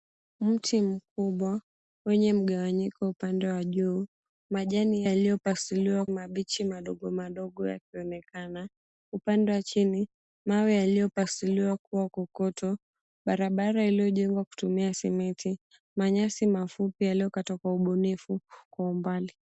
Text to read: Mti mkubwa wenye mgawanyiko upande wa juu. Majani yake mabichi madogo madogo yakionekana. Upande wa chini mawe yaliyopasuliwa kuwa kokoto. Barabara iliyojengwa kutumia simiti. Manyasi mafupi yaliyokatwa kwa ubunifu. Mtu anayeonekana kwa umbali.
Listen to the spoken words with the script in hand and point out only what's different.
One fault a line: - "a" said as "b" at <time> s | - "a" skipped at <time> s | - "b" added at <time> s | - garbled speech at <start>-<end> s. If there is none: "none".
- "yake" said as "yaliyopasuliwa" at 5.0 s
- "Mtu anayeonekana" skipped at 18.4 s